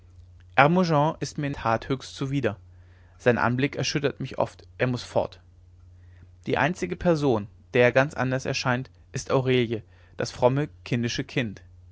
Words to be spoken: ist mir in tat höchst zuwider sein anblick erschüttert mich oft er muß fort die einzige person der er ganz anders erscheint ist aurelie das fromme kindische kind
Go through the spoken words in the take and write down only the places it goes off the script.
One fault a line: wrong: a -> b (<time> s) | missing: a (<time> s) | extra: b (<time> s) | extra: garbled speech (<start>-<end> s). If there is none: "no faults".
no faults